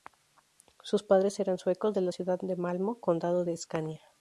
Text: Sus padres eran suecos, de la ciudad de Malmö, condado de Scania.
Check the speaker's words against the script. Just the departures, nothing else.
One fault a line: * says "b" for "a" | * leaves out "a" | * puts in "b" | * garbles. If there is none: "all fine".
all fine